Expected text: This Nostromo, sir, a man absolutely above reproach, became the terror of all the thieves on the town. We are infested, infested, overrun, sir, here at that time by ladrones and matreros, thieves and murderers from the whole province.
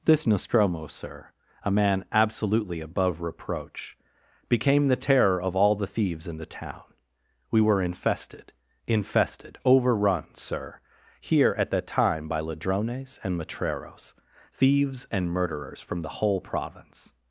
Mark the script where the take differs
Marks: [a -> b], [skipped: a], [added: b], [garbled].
This Nostromo, sir, a man absolutely above reproach, became the terror of all the thieves [on -> in] the town. We [are -> were] infested, infested, overrun, sir, here at that time by ladrones and matreros, thieves and murderers from the whole province.